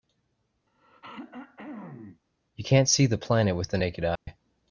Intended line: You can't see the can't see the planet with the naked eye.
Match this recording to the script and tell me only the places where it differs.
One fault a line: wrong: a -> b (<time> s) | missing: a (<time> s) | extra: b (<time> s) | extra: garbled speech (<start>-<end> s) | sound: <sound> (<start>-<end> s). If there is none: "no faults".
sound: throat clearing (0.7-2.2 s)
missing: can't see the (3.2 s)
sound: dropout (4.2-4.3 s)